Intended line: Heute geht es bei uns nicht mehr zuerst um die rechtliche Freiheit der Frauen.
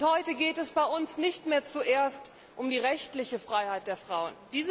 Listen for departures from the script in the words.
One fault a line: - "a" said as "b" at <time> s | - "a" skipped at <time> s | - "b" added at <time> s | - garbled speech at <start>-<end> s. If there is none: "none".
none